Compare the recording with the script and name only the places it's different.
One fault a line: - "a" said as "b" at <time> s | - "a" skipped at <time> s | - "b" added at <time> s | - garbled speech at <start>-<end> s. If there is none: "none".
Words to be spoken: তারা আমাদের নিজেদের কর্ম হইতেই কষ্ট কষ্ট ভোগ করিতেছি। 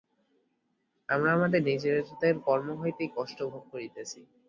- "তারা" said as "আমরা" at 1.1 s
- "কষ্ট" skipped at 3.4 s